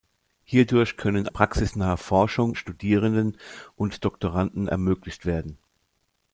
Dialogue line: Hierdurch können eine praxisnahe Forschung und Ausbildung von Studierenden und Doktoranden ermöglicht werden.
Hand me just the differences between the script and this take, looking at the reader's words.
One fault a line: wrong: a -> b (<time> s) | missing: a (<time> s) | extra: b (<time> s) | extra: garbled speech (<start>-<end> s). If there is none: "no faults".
missing: eine (1.3 s)
missing: und Ausbildung von (2.5 s)